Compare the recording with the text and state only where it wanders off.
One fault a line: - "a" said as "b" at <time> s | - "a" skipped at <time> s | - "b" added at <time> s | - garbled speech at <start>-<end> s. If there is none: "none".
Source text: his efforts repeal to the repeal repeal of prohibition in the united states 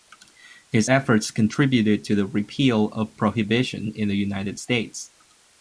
- "repeal" said as "contributed" at 1.3 s
- "repeal" skipped at 2.9 s